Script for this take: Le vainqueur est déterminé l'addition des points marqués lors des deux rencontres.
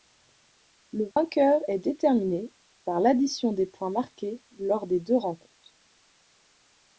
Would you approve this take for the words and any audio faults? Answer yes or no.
no